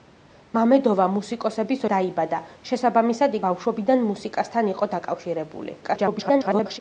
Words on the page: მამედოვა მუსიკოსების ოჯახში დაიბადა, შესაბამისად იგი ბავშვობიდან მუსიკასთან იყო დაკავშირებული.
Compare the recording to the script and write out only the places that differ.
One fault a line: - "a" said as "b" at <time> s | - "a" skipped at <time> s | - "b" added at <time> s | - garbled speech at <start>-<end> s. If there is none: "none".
- "ოჯახში" skipped at 1.9 s
- "იგი" skipped at 3.4 s
- garbled speech at 5.8-6.8 s